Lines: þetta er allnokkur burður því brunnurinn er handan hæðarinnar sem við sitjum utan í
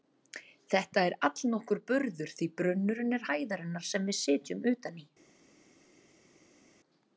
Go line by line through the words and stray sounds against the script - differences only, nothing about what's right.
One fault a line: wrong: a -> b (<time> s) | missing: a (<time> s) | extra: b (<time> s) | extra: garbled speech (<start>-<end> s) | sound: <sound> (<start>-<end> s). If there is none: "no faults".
missing: handan (3.3 s)